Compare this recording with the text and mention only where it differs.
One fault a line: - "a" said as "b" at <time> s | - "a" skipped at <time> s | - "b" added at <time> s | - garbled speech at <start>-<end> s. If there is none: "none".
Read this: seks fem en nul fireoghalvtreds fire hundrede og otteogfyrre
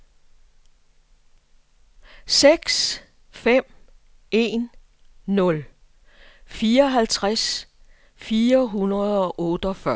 none